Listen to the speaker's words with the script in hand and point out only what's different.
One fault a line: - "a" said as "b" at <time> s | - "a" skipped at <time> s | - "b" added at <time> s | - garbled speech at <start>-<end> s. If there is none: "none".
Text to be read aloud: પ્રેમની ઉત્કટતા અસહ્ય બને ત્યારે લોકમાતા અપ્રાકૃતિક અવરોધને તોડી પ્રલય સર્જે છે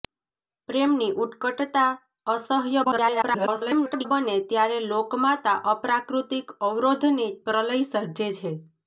- garbled speech at 2.8-4.1 s
- "તોડી" skipped at 7.3 s